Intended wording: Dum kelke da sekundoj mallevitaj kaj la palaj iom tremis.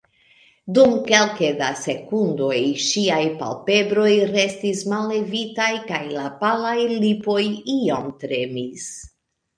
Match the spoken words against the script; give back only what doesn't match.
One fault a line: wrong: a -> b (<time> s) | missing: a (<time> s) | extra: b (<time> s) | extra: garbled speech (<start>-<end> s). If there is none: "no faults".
extra: ŝiaj palpebroj restis (2.9 s)
extra: lipoj (7.1 s)